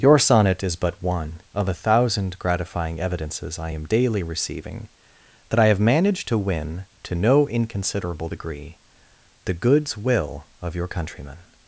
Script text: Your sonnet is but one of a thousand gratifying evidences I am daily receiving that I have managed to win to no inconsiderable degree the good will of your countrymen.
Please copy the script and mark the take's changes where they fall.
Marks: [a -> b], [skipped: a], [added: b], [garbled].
Your sonnet is but one of a thousand gratifying evidences I am daily receiving that I have managed to win to no inconsiderable degree the [good -> goods] will of your countrymen.